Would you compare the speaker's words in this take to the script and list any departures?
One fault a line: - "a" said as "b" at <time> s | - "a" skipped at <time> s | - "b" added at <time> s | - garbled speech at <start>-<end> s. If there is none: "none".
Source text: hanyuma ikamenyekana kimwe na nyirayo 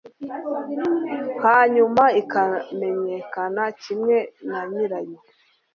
none